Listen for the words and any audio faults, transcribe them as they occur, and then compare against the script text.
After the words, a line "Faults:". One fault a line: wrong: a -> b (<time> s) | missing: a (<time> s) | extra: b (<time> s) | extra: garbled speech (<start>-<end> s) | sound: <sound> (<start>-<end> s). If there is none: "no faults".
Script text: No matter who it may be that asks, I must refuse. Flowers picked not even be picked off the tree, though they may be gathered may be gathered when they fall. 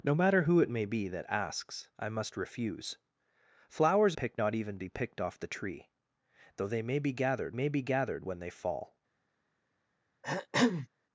No matter who it may be that asks, I must refuse. Flowers picked not even be picked off the tree, though they may be gathered may be gathered when they fall.
Faults:
sound: throat clearing (10.2-10.9 s)